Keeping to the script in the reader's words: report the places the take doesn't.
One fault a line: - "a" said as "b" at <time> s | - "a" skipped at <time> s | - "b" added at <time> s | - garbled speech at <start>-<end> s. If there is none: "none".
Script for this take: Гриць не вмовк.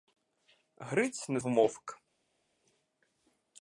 none